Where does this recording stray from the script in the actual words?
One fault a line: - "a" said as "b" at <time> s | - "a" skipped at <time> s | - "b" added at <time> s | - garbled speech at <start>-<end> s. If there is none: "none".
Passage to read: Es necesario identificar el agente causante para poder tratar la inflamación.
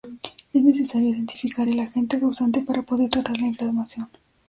none